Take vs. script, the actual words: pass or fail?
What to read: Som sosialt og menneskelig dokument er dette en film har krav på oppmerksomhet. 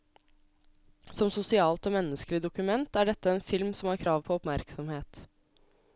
fail